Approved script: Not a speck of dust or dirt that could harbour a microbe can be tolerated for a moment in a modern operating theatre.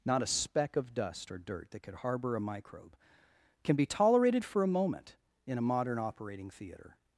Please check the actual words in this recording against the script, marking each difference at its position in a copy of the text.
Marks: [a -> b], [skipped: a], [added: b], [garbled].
Not a speck of dust or dirt that could harbour a microbe can be tolerated for a moment in a modern operating theatre.